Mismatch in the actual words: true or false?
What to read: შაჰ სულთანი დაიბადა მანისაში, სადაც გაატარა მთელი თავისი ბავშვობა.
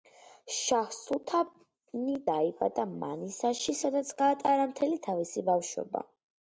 false